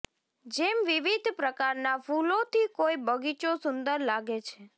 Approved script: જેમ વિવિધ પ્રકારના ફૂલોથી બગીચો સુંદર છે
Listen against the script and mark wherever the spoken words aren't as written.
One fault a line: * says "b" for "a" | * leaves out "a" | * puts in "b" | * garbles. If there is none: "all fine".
* puts in "કોઈ"
* puts in "લાગે"